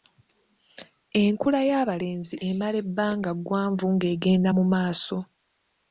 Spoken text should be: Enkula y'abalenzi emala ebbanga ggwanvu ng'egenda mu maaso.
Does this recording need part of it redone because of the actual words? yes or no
no